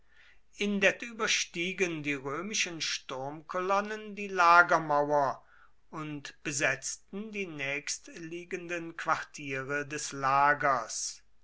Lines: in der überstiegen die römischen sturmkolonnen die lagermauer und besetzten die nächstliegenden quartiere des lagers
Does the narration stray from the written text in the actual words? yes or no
no